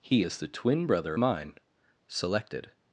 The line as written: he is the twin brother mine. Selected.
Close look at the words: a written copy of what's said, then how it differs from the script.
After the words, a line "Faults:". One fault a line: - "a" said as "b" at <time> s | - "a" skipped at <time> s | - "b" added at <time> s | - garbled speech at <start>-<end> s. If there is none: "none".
he is the twin brother mine. Selected.
Faults:
none